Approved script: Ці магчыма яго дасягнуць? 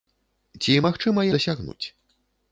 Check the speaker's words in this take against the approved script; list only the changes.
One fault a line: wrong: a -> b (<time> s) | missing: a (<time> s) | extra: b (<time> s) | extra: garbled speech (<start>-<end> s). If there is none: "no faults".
missing: яго (1.3 s)